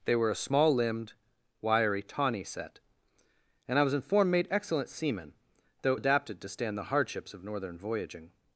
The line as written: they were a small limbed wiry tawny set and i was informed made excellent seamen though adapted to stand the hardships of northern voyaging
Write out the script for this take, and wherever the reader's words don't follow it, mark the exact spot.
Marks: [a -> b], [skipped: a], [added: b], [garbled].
they were a small limbed wiry tawny set and i was informed made excellent seamen though adapted to stand the hardships of northern voyaging